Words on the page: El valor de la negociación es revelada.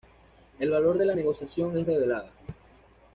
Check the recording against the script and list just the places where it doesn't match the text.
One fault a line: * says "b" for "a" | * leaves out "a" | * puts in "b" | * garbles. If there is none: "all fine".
all fine